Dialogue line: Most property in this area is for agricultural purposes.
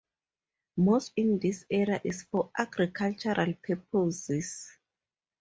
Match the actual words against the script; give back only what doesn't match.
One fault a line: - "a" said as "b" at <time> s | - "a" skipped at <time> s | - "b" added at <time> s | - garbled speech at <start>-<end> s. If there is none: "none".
- "property" skipped at 1.1 s